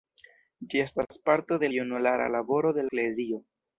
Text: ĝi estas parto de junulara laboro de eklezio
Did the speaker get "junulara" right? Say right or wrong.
right